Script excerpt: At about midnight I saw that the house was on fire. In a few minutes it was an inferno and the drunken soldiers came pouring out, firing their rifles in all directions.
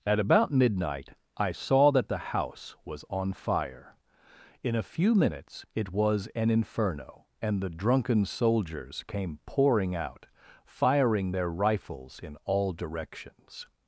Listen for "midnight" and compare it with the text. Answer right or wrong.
right